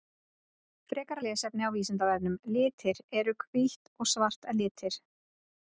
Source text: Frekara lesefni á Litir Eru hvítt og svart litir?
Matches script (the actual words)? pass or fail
fail